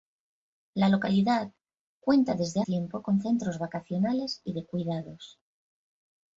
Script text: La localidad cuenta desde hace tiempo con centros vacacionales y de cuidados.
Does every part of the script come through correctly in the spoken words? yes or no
no